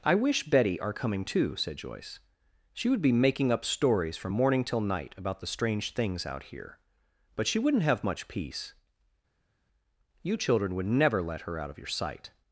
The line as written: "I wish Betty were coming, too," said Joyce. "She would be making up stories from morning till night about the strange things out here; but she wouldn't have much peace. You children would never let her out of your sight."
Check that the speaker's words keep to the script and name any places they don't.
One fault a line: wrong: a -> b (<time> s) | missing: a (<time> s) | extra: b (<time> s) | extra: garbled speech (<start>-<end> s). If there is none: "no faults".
wrong: were -> are (0.8 s)